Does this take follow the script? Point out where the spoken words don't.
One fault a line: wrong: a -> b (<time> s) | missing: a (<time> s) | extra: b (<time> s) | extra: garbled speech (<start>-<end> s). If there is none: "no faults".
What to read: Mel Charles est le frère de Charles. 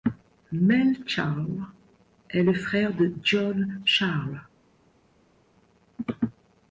extra: John (3.2 s)